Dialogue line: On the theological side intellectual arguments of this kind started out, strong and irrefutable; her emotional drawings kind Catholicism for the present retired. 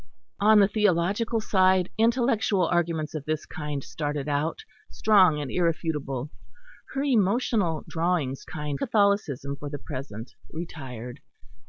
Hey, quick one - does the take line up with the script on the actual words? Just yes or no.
yes